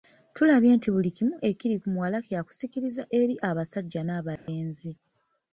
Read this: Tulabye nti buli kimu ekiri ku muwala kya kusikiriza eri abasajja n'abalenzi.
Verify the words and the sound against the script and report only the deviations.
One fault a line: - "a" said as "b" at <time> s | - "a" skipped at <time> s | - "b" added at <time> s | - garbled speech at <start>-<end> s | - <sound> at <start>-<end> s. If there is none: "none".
- dropout at 4.4-4.5 s